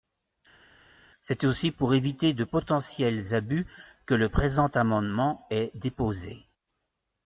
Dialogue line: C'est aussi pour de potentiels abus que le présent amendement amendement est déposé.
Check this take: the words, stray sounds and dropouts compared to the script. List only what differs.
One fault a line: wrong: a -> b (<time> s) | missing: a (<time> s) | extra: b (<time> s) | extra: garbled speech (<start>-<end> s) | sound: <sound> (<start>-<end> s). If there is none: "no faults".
extra: éviter (1.9 s)
missing: amendement (5.4 s)